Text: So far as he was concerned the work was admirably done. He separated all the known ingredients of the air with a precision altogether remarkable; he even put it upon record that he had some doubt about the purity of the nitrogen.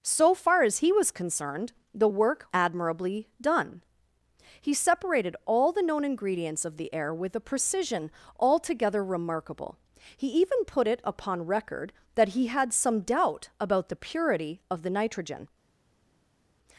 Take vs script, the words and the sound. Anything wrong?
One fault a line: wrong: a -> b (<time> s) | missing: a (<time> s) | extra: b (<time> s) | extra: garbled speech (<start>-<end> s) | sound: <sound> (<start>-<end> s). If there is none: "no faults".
missing: was (2.5 s)